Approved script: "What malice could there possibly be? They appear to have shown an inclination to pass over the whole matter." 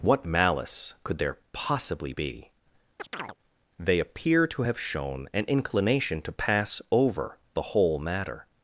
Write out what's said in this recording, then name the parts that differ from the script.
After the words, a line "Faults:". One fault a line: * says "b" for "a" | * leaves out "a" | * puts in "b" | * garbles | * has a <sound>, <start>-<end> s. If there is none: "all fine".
"What malice could there possibly be? They appear to have shown an inclination to pass over the whole matter."
Faults:
* has a chirp, 3.0-3.4 s